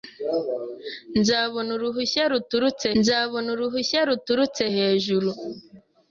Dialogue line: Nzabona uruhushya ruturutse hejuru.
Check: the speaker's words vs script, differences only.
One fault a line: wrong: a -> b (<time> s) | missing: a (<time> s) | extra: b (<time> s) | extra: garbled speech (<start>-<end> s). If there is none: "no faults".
extra: nzabona uruhushya ruturutse (3.0 s)